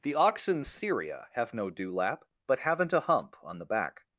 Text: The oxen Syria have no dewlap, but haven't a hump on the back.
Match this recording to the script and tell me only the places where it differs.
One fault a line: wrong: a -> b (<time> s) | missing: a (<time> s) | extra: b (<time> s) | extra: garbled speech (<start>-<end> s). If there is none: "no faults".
no faults